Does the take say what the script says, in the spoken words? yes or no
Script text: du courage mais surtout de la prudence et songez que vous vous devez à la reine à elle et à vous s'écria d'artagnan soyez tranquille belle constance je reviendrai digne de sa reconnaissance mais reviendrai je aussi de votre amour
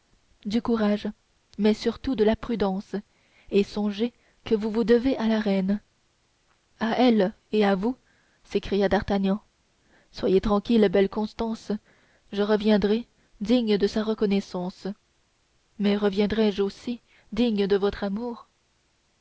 no